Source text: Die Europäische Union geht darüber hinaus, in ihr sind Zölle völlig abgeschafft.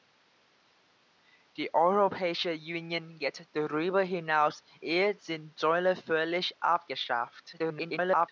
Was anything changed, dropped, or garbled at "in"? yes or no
yes